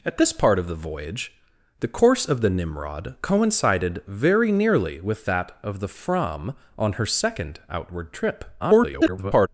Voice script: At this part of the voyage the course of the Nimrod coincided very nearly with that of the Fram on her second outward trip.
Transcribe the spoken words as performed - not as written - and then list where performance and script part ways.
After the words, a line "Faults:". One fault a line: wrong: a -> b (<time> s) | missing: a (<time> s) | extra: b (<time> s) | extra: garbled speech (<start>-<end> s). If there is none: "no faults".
At this part of the voyage the course of the Nimrod coincided very nearly with that of the Fram on her second outward trip. [garbled]
Faults:
extra: garbled speech (8.6-9.5 s)